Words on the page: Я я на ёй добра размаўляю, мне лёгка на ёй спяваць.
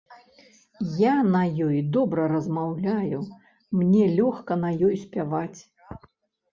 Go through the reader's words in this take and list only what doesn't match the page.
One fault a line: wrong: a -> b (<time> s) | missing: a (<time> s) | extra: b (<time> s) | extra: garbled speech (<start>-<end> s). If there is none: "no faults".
missing: я (1.1 s)